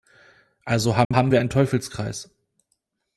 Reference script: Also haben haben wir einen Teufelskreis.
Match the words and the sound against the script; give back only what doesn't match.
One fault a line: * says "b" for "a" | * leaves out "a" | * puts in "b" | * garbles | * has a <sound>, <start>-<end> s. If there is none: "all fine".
* has a dropout, 1.0-1.1 s